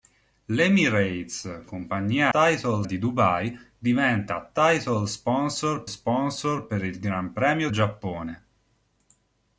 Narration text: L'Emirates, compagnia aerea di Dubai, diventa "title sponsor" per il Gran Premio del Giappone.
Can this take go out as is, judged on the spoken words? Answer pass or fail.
fail